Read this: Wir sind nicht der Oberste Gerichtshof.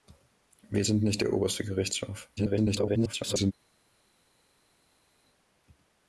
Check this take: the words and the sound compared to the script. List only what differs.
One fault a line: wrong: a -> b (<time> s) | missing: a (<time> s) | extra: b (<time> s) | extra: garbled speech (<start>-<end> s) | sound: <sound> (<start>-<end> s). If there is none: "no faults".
extra: garbled speech (2.4-3.5 s)